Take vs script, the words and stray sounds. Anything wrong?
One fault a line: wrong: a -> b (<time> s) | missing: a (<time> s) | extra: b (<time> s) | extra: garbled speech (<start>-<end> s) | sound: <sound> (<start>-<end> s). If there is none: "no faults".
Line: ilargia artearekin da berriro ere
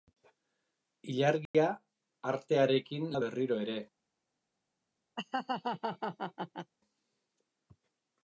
sound: dropout (1.5-1.5 s)
sound: laugh (5.2-6.7 s)